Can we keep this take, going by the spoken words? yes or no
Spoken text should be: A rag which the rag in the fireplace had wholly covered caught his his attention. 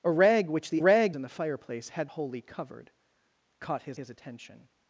yes